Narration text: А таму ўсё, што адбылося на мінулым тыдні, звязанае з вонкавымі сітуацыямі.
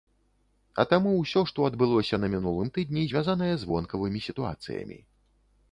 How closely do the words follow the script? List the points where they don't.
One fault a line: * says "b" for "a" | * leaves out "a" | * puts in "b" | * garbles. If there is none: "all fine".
all fine